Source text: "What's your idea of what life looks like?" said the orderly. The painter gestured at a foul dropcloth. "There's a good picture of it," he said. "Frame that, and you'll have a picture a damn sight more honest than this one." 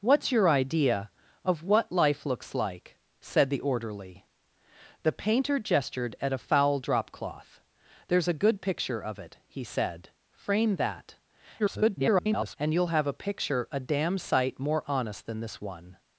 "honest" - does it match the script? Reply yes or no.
yes